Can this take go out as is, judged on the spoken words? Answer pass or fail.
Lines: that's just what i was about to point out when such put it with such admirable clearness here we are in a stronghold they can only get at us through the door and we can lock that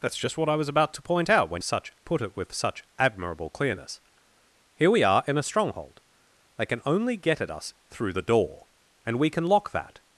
pass